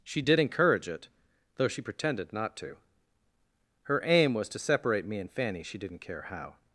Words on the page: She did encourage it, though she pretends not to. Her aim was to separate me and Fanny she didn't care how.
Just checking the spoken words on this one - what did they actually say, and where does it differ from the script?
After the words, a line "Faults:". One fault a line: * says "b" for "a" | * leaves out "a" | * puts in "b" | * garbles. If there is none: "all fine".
She did encourage it, though she pretended not to. Her aim was to separate me and Fanny she didn't care how.
Faults:
* says "pretended" for "pretends"